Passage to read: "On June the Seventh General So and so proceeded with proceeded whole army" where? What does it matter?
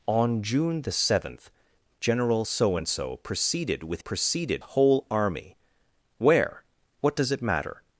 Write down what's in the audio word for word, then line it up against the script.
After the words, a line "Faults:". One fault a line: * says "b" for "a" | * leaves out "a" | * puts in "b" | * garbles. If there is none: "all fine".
"On June the Seventh General So and so proceeded with proceeded whole army" where? What does it matter?
Faults:
all fine